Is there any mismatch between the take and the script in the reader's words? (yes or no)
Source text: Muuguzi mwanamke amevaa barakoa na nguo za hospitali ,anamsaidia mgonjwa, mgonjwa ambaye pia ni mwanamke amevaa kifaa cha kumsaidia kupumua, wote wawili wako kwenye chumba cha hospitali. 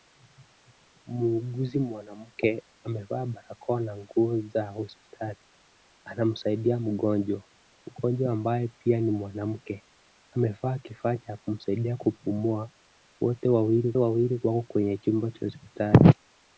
yes